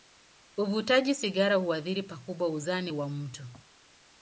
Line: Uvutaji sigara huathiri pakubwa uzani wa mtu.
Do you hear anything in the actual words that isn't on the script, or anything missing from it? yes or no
no